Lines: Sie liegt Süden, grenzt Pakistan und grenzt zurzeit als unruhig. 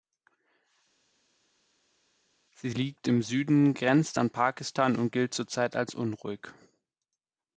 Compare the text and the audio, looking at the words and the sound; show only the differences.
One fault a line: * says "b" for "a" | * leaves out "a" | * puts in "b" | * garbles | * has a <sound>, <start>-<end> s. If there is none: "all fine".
* puts in "im"
* puts in "an"
* says "gilt" for "grenzt"